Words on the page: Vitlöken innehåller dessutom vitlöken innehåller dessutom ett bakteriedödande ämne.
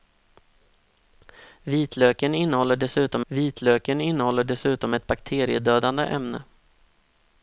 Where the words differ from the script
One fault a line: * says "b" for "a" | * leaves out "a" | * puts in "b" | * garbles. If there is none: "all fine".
all fine